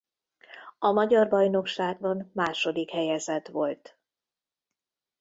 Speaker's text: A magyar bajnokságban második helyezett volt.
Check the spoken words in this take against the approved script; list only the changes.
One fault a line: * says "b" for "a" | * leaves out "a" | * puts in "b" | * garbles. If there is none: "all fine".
all fine